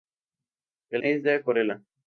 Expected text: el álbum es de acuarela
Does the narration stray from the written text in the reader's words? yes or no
yes